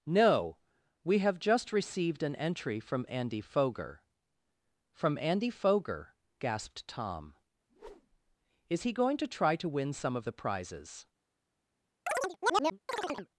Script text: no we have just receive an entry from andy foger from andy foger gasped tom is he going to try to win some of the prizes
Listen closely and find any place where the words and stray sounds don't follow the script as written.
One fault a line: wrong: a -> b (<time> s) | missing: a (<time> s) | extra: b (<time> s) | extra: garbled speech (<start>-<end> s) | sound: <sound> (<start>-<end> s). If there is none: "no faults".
wrong: receive -> received (1.7 s)
sound: whoosh (7.7-8.4 s)
sound: chirp (12.1-13.3 s)